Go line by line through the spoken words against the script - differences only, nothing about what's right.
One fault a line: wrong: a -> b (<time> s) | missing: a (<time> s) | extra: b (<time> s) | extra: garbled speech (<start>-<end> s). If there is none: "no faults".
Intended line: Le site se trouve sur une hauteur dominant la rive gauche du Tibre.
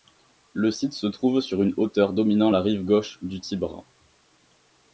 no faults